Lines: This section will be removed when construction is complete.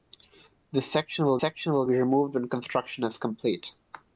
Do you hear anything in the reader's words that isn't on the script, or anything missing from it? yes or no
yes